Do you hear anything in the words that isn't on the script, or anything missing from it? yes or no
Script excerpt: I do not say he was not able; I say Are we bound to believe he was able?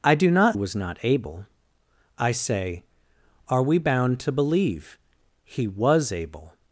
yes